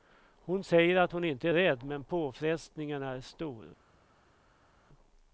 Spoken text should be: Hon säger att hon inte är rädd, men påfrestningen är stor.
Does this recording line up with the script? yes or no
yes